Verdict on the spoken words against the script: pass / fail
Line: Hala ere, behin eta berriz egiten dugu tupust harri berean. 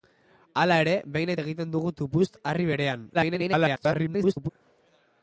fail